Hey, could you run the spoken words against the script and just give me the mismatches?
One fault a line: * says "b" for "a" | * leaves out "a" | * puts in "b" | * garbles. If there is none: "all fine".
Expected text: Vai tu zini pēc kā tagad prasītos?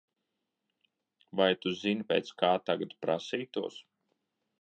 all fine